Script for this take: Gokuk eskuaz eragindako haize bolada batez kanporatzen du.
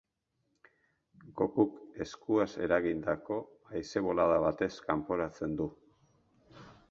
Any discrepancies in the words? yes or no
no